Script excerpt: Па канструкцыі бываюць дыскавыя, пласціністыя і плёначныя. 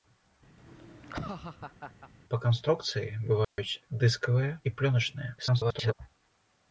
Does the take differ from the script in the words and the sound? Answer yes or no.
yes